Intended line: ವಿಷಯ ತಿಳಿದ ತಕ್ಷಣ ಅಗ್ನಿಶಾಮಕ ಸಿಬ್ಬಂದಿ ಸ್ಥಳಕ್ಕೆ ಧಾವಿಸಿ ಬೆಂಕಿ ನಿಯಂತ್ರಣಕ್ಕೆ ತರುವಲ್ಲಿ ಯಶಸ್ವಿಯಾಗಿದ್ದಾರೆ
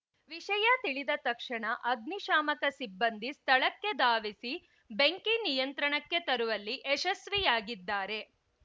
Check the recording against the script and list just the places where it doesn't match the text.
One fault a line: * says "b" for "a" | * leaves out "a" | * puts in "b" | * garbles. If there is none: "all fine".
all fine